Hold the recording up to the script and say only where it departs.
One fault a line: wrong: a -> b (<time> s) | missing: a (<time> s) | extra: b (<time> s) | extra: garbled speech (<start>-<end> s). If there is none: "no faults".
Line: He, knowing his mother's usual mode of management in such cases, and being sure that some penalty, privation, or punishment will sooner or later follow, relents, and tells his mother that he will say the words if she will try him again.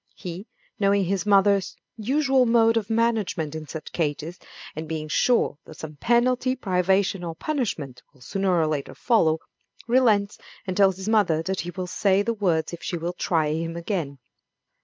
no faults